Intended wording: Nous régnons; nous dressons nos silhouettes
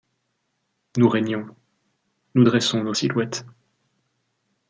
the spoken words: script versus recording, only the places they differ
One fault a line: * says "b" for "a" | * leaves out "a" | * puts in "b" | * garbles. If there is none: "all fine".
all fine